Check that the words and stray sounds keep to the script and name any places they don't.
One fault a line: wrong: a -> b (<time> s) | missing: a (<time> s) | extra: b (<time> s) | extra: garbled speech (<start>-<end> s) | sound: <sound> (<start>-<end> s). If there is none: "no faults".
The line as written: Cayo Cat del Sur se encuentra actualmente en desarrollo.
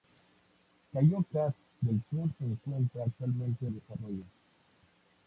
no faults